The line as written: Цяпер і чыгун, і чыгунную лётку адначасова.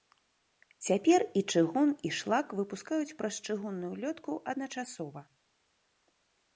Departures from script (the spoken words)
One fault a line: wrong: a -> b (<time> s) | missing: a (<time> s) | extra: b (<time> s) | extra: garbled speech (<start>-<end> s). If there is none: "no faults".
extra: шлак выпускаюць праз (2.2 s)